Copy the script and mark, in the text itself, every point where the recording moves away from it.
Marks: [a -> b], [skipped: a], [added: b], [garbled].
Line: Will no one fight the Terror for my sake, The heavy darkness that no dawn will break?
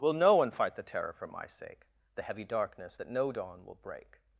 Will no one fight the Terror for my sake, The heavy darkness that no dawn will break?